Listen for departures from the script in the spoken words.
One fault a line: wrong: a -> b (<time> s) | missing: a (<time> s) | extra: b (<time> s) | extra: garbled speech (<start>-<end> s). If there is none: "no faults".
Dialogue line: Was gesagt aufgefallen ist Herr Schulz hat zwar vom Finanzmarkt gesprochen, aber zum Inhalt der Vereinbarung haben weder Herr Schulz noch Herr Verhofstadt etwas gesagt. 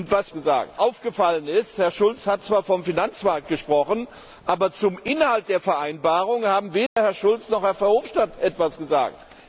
no faults